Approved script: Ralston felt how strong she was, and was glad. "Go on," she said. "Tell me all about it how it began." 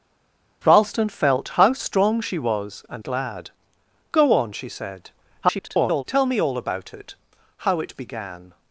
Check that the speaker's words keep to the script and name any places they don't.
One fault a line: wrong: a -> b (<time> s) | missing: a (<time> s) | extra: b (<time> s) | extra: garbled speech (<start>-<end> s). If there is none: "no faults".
missing: was (3.0 s)
extra: garbled speech (5.4-6.0 s)